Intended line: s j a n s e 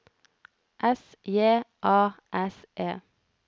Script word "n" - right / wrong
wrong